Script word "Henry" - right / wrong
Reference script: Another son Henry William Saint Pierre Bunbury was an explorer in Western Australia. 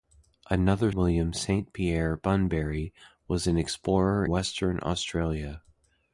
wrong